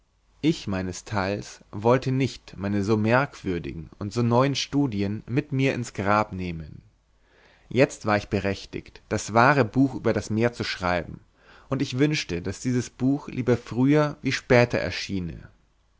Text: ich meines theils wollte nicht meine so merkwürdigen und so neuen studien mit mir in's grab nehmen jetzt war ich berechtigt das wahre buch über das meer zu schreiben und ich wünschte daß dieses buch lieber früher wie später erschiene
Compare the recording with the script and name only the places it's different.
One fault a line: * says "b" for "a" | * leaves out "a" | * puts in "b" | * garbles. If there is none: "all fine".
all fine